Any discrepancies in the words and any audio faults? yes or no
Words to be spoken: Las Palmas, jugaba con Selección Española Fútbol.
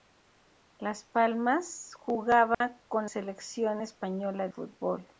yes